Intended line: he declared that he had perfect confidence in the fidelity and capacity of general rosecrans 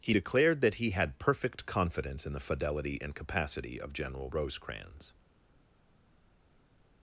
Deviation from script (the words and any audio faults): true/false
false